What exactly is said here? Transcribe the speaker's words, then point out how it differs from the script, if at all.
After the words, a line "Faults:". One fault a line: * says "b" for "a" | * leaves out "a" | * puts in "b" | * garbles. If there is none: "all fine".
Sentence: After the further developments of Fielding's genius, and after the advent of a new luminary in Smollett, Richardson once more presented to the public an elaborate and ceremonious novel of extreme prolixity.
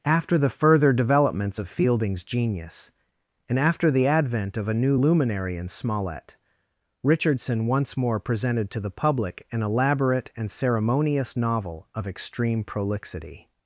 After the further developments of Fielding's genius, and after the advent of a new luminary in Smollett, Richardson once more presented to the public an elaborate and ceremonious novel of extreme prolixity.
Faults:
all fine